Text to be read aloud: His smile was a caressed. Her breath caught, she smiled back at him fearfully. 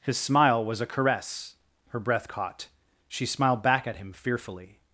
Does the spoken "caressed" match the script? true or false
false